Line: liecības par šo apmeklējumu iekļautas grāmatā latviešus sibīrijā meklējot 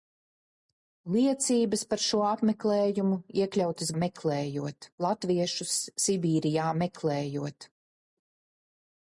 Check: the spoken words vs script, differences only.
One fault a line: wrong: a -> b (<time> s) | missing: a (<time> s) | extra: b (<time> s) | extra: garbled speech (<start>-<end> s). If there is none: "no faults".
wrong: grāmatā -> meklējot (4.0 s)